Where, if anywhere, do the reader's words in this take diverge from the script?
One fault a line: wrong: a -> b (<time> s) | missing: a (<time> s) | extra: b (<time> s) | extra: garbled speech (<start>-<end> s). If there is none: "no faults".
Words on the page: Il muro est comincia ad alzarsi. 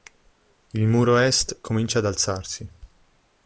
no faults